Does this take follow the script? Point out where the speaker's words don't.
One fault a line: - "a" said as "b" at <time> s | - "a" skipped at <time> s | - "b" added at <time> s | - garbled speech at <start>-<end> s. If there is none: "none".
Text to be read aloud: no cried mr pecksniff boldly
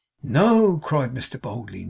- "pecksniff" skipped at 1.4 s